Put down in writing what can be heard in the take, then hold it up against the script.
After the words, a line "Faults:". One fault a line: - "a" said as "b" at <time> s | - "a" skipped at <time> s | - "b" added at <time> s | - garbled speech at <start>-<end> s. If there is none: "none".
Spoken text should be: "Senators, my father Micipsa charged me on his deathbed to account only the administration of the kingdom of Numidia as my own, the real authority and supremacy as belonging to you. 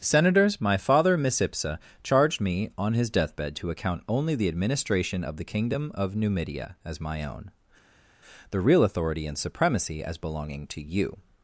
"Senators, my father Micipsa charged me on his deathbed to account only the administration of the kingdom of Numidia as my own, the real authority and supremacy as belonging to you.
Faults:
none